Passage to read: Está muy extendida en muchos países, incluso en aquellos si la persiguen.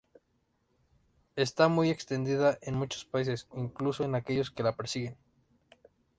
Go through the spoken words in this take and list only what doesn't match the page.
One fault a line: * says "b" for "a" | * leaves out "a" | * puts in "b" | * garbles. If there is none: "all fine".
* says "que" for "si"